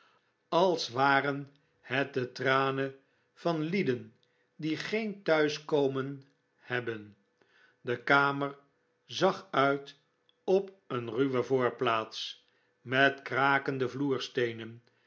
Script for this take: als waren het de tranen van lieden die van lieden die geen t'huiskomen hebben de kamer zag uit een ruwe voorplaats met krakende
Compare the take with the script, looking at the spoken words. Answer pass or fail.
fail